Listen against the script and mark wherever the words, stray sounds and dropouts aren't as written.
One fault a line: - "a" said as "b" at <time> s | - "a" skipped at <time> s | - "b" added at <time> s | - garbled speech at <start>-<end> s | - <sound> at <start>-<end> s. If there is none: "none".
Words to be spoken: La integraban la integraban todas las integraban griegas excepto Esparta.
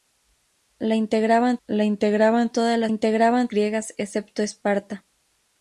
none